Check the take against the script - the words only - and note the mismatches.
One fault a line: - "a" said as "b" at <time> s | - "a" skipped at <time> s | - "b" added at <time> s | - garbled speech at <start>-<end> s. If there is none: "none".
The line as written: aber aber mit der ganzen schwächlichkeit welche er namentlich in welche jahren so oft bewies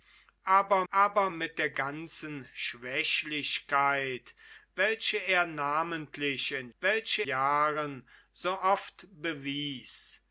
none